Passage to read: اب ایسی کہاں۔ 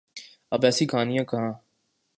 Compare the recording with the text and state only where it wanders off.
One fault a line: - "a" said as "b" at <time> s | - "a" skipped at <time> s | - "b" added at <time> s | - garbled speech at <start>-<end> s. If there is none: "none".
- "کہانیاں" added at 0.8 s